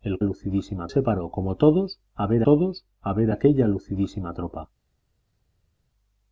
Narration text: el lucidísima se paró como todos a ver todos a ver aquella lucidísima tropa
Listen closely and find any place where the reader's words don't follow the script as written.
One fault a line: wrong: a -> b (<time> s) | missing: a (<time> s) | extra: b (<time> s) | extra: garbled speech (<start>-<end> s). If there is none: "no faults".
no faults